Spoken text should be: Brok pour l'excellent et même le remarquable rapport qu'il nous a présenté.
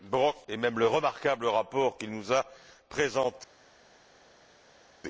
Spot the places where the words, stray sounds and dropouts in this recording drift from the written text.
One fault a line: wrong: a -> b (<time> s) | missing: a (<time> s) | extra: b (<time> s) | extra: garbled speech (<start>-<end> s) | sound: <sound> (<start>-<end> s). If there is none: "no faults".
missing: pour l'excellent (0.3 s)